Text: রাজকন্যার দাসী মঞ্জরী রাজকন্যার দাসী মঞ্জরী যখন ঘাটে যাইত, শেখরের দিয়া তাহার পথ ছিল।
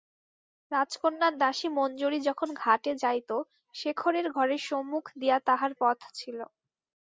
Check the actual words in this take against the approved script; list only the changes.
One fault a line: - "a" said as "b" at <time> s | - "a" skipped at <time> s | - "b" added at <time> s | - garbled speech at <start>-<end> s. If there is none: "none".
- "রাজকন্যার দাসী মঞ্জরী" skipped at 2.2 s
- "ঘরের সম্মুখ" added at 4.3 s